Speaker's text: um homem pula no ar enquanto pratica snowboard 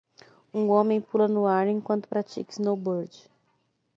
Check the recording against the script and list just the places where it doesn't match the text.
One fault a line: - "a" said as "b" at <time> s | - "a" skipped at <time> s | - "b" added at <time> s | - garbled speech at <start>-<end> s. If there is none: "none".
none